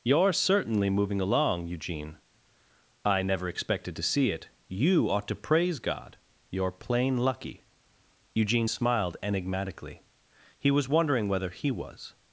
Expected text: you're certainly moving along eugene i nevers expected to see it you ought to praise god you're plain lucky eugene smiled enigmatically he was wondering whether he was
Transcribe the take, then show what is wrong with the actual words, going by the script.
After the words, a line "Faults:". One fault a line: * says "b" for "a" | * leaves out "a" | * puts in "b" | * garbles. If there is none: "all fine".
you're certainly moving along eugene i never expected to see it you ought to praise god you're plain lucky eugene smiled enigmatically he was wondering whether he was
Faults:
* says "never" for "nevers"